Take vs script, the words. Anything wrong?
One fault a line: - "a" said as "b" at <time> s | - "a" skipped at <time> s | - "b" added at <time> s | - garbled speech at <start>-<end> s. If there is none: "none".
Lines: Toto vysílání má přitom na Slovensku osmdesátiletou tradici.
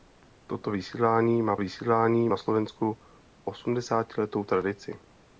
- "přitom" said as "vysílání" at 1.6 s